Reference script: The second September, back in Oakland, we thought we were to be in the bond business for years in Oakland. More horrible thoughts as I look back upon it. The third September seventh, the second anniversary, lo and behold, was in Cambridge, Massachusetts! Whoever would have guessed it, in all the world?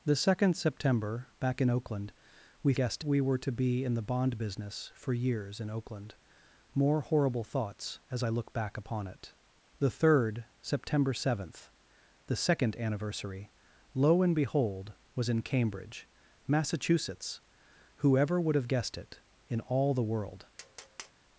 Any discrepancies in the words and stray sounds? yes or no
yes